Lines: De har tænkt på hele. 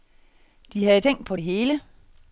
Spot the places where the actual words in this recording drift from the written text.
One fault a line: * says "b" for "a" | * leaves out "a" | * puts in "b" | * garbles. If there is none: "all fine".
* says "havde" for "har"
* puts in "det"